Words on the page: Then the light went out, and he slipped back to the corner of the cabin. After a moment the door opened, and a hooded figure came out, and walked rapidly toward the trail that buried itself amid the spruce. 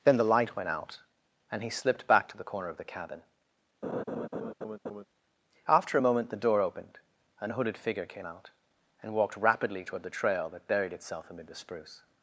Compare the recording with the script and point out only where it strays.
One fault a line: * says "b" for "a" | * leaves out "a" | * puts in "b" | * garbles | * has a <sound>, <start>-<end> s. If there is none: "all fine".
* has a laugh, 3.8-5.1 s